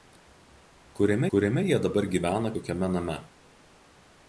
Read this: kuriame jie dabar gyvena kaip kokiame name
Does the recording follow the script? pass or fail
fail